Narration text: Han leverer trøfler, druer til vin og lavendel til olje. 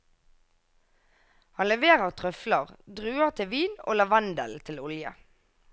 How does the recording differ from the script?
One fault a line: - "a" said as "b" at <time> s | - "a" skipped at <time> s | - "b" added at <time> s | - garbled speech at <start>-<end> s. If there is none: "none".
none